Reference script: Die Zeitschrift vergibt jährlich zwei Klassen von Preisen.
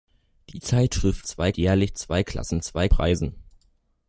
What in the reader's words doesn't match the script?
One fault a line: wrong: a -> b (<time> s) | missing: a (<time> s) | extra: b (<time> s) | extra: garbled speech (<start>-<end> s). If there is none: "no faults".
wrong: vergibt -> zwei (1.2 s)
wrong: von -> zwei (2.6 s)